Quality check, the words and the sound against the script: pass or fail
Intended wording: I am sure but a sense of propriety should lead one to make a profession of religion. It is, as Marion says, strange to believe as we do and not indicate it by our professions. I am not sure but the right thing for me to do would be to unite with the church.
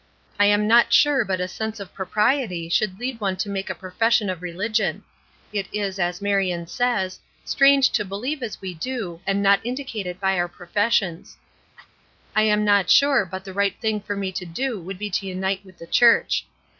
fail